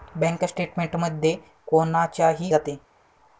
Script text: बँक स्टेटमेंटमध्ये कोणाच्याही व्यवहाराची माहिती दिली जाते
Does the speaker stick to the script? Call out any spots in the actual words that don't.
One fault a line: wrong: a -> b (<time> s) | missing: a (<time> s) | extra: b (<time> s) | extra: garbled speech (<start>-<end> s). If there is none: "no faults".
missing: व्यवहाराची माहिती दिली (2.5 s)